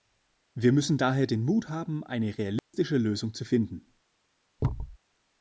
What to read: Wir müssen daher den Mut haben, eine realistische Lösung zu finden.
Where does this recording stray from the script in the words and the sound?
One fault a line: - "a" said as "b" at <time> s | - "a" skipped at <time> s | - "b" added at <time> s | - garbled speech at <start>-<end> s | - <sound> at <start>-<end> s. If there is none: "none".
- dropout at 2.6-2.7 s
- thud at 4.6-5.0 s